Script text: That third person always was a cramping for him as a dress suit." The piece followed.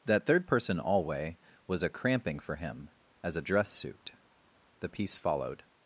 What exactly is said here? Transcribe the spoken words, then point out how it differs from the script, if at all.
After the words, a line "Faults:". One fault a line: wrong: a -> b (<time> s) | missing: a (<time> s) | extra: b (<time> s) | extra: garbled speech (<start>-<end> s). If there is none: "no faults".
That third person alway was a cramping for him as a dress suit." The piece followed.
Faults:
wrong: always -> alway (0.8 s)